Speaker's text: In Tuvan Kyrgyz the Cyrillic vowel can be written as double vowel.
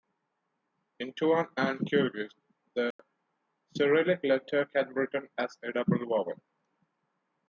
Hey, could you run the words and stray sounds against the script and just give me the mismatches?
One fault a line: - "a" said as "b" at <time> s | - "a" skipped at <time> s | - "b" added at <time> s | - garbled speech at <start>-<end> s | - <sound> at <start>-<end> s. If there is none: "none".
- "and" added at 1.6 s
- dropout at 2.9-3.0 s
- "vowel" said as "letter" at 4.2 s
- "a" added at 5.6 s